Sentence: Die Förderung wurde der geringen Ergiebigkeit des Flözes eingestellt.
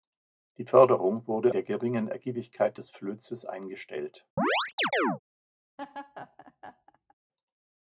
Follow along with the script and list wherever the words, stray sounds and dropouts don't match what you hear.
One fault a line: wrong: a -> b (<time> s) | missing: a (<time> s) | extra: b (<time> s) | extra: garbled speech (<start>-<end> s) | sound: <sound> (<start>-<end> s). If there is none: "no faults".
sound: chirp (4.4-5.2 s)
sound: laugh (5.8-7.1 s)